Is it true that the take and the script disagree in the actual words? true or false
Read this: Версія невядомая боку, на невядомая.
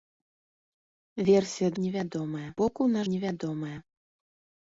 false